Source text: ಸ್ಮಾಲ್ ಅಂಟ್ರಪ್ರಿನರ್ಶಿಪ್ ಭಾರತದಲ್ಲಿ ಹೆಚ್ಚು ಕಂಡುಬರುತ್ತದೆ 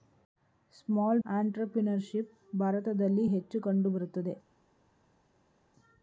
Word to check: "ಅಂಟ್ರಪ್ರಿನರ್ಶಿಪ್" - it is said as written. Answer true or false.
true